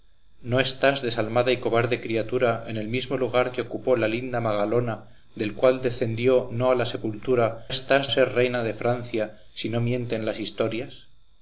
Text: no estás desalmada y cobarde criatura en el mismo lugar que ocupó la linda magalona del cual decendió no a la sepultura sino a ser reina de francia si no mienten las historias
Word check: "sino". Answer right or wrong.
wrong